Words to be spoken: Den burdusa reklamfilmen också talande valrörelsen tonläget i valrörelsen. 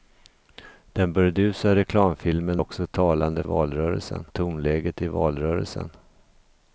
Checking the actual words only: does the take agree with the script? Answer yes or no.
yes